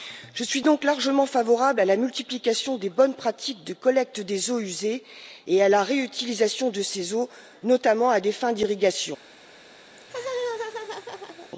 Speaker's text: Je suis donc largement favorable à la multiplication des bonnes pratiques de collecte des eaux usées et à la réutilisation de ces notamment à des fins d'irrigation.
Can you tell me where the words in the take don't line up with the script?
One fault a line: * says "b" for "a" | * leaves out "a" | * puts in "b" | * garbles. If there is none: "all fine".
* puts in "eaux"